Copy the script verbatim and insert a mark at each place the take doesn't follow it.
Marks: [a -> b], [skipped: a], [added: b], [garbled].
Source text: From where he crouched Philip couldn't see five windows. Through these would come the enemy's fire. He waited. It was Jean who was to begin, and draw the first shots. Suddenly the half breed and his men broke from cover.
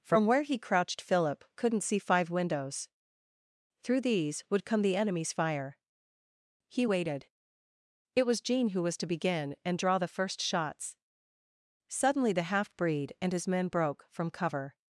From where he crouched Philip couldn't see five windows. Through these would come the enemy's fire. He waited. It was Jean who was to begin, and draw the first shots. Suddenly the half breed and his men broke from cover.